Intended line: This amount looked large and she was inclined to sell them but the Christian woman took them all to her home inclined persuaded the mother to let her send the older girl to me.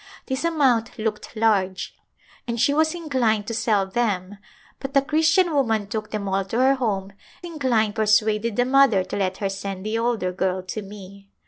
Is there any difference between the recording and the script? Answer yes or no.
no